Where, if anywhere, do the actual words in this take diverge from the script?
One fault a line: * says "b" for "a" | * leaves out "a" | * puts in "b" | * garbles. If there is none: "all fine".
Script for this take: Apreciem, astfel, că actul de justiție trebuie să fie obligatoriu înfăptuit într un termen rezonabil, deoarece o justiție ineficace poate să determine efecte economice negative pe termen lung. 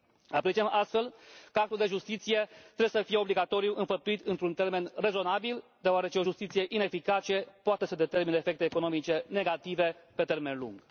all fine